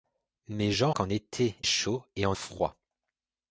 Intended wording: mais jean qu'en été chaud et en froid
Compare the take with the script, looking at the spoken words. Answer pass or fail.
pass